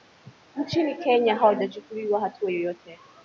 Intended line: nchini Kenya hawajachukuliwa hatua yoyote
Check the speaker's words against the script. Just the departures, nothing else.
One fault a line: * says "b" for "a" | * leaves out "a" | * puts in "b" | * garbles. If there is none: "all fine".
all fine